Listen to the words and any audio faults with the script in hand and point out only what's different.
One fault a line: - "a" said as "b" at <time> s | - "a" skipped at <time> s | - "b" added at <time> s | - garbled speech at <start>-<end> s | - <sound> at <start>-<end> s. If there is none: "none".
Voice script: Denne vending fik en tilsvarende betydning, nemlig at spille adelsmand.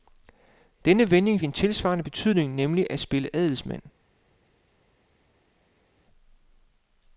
- "fik" skipped at 1.4 s